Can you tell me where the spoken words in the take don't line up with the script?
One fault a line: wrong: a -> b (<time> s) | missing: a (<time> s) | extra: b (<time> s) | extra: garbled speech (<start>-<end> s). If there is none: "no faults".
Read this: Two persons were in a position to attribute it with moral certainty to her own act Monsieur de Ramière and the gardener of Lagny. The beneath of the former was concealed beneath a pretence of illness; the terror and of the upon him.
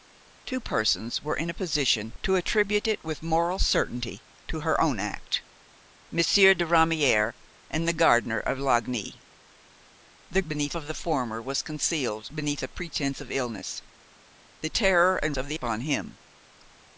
no faults